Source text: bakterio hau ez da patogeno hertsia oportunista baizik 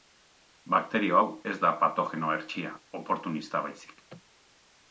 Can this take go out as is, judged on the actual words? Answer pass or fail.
pass